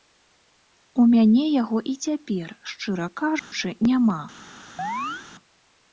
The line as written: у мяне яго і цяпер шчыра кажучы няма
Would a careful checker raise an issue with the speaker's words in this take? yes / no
no